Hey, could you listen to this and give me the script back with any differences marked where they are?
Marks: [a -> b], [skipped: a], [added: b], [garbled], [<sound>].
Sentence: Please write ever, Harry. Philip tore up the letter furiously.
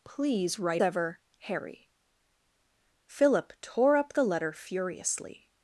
Please write ever, Harry. Philip tore up the letter furiously.